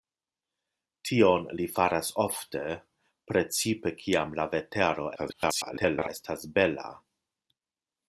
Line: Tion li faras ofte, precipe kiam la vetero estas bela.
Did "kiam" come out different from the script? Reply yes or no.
no